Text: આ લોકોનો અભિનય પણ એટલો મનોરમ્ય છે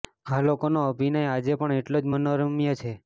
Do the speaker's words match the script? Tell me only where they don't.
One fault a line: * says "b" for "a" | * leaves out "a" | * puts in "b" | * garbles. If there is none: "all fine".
* puts in "આજે"
* puts in "જ"